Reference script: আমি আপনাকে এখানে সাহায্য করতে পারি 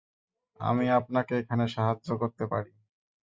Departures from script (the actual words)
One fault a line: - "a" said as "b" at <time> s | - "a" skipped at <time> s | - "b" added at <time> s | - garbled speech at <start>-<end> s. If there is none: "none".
none